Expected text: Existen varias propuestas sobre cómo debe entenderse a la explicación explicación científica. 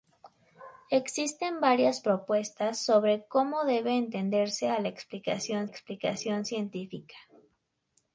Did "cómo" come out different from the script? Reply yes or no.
no